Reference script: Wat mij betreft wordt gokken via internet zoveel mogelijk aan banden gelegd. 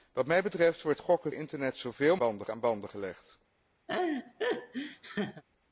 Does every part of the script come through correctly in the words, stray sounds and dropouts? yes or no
no